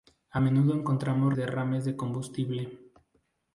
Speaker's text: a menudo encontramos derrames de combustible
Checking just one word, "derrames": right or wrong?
right